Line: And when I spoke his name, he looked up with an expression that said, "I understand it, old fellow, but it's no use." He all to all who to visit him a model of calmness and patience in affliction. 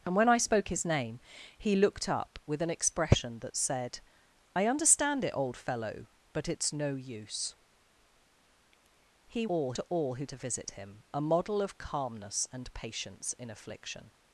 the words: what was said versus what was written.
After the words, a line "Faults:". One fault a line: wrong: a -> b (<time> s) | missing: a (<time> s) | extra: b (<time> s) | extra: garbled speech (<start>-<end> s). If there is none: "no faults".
And when I spoke his name, he looked up with an expression that said, "I understand it, old fellow, but it's no use." He all to all who to visit him a model of calmness and patience in affliction.
Faults:
no faults